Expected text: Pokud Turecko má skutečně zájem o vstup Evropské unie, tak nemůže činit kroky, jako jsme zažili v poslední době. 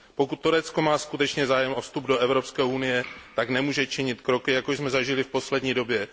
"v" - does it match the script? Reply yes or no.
yes